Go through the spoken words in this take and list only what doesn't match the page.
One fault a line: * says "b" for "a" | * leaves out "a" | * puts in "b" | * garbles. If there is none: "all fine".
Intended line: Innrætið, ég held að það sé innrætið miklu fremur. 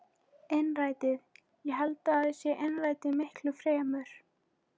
all fine